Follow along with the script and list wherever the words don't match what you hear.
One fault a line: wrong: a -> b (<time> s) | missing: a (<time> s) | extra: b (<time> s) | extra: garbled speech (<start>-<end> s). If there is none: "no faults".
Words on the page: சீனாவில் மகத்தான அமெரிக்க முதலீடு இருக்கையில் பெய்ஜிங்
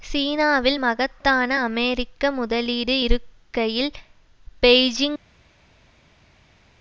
no faults